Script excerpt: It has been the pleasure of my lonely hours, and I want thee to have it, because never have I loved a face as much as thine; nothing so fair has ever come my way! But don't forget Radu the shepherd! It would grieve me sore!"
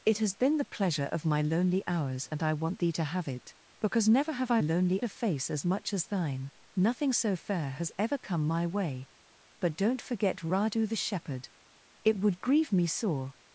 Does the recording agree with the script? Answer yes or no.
no